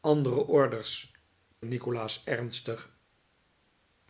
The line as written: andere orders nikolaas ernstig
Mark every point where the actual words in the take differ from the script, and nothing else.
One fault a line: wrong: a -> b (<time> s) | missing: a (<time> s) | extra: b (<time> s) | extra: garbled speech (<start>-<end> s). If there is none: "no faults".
no faults